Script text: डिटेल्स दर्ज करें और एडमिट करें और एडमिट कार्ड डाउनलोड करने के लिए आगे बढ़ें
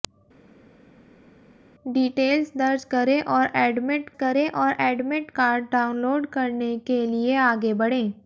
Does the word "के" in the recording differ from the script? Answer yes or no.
no